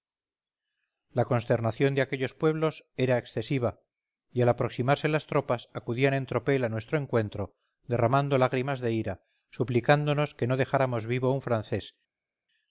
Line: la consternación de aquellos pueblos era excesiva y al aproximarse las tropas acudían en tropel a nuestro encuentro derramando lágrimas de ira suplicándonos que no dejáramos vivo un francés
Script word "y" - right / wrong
right